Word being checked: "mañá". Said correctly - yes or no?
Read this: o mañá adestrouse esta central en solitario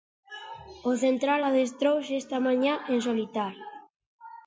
no